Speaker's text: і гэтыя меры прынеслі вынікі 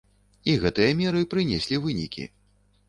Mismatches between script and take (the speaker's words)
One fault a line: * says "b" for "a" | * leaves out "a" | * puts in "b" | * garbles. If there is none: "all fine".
all fine